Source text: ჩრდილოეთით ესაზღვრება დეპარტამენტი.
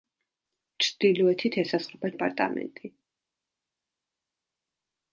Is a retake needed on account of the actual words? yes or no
no